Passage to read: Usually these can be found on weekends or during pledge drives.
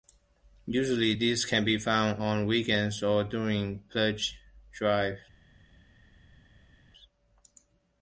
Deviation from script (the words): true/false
false